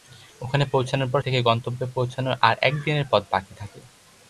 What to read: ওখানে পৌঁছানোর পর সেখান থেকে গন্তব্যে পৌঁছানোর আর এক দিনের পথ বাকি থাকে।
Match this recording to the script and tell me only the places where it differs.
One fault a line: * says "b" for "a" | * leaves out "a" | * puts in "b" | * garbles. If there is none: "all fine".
* leaves out "সেখান"